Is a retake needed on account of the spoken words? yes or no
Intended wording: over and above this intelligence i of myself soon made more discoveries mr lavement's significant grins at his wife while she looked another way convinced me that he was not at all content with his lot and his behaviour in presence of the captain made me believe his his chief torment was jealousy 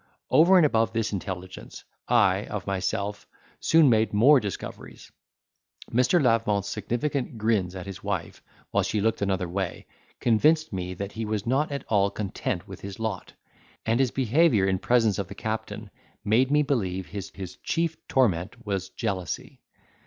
no